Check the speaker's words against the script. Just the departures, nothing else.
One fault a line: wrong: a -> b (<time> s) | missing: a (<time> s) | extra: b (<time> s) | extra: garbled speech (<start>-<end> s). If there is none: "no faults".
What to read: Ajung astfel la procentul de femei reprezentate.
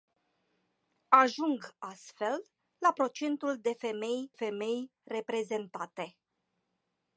extra: femei (4.3 s)